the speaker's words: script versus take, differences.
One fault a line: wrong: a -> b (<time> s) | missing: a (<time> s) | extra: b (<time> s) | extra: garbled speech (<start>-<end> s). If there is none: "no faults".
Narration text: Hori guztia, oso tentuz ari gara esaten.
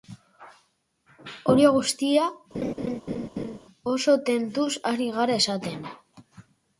no faults